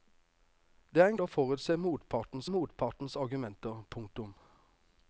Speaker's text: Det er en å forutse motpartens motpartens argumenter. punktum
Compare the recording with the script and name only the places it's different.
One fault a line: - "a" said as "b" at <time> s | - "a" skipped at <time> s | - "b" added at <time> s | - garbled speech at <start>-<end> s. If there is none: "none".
none